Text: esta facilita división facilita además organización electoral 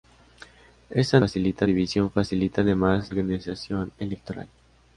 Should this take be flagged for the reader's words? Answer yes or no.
no